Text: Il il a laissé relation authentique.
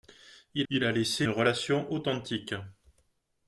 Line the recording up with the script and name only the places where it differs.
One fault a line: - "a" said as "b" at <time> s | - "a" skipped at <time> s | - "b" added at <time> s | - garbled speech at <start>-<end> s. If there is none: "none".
none